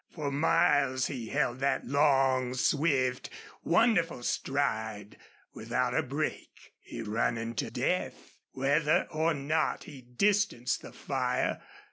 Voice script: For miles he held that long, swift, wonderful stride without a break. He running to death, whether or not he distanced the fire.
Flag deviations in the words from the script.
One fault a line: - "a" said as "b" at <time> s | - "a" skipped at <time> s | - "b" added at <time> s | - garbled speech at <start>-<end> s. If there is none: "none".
none